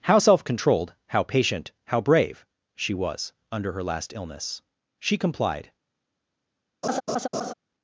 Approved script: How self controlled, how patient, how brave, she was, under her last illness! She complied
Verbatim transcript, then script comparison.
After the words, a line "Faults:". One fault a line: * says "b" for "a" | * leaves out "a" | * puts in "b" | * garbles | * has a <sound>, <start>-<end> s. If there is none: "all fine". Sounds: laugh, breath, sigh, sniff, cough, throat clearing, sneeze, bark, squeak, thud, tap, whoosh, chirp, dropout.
How self controlled, how patient, how brave, she was, under her last illness! She complied
Faults:
* has a laugh, 6.8-7.5 s